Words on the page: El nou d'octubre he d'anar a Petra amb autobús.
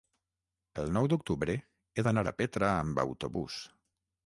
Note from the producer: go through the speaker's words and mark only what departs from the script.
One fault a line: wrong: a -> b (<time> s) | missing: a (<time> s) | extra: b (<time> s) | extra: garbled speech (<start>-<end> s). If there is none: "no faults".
no faults